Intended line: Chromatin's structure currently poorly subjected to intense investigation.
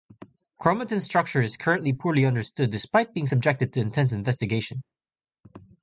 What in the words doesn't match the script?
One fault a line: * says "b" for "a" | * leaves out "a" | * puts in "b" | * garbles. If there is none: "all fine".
* puts in "is"
* puts in "understood despite being"